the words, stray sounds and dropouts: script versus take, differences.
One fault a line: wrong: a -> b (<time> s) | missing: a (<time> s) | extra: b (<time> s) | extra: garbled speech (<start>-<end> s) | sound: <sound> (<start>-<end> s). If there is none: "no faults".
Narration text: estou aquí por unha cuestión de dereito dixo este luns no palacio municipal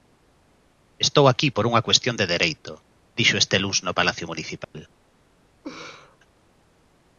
sound: dropout (4.6-4.7 s)
sound: laugh (5.6-6.2 s)